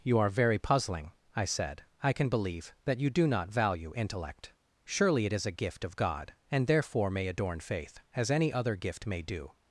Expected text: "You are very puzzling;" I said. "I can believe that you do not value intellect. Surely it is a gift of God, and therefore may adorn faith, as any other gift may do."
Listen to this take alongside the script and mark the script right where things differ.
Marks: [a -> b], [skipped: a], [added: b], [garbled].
"You are very puzzling;" I said. "I can believe that you do not value intellect. Surely it is a gift of God, and therefore may adorn faith, as any other gift may do."